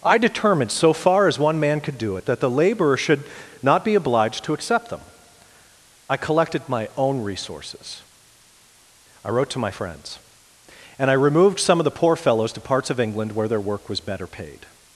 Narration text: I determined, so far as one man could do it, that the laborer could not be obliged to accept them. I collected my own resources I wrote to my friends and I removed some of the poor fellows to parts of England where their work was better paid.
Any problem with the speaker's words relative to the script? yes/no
yes